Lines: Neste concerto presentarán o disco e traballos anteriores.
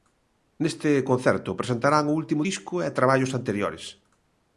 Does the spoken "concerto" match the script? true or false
true